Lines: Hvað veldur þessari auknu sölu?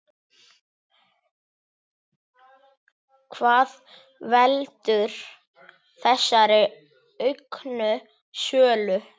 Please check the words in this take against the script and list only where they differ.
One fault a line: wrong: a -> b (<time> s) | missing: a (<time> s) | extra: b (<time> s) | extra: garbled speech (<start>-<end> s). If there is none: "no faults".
no faults